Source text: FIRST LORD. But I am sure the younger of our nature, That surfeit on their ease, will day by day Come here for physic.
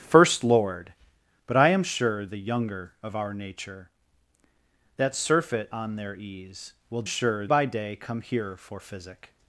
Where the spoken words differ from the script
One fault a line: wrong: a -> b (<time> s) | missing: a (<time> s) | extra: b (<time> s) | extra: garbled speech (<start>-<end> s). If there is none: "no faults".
wrong: day -> sure (7.0 s)